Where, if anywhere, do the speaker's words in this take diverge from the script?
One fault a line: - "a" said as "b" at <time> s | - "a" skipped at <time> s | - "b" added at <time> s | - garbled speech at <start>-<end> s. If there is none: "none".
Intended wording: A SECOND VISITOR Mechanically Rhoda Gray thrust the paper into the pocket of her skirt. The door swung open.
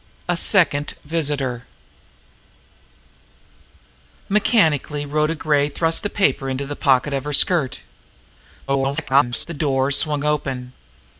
- garbled speech at 8.7-9.4 s